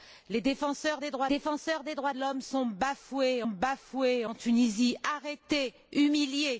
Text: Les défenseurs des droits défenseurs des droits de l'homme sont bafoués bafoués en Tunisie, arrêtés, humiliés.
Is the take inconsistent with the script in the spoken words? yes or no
no